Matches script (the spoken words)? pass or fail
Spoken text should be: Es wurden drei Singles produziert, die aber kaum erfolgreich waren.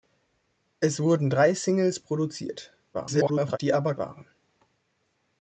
fail